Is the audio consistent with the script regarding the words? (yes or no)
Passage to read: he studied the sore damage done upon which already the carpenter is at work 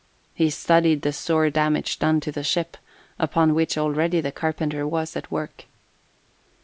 no